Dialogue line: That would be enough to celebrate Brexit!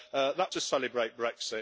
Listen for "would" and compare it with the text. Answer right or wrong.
wrong